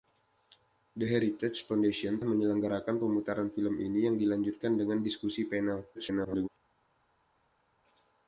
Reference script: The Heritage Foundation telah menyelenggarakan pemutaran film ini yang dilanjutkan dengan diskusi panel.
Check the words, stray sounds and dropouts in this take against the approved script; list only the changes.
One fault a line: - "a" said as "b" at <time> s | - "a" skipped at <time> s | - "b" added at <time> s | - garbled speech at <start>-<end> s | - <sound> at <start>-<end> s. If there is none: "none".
- "telah" skipped at 2.2 s
- garbled speech at 5.9-6.5 s